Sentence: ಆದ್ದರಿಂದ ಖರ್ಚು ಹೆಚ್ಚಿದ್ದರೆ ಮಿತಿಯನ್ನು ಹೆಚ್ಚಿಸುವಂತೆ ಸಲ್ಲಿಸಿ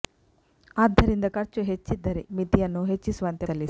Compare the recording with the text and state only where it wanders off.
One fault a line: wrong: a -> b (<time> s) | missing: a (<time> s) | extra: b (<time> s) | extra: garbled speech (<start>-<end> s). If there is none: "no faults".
no faults